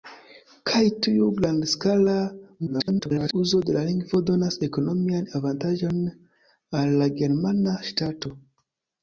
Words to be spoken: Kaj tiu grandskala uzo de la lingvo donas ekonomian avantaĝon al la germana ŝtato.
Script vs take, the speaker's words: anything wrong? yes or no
yes